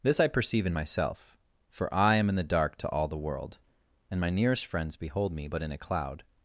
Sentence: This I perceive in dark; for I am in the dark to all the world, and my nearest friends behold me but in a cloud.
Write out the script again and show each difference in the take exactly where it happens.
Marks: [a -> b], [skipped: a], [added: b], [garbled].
This I perceive in [dark; -> myself] for I am in the dark to all the world, and my nearest friends behold me but in a cloud.